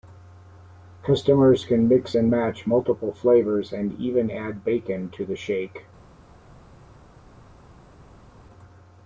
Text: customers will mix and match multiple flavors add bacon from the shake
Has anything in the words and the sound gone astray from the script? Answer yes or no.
yes